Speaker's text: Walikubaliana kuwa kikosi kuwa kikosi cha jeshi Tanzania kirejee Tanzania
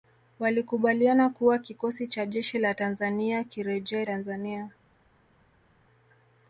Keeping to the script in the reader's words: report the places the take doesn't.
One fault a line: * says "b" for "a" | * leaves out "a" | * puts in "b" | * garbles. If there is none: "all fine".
* leaves out "kuwa kikosi"
* puts in "la"